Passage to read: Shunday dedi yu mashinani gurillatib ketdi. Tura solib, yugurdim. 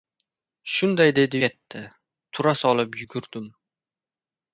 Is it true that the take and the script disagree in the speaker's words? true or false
true